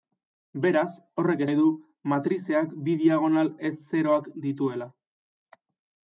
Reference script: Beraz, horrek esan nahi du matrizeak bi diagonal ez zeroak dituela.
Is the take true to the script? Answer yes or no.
no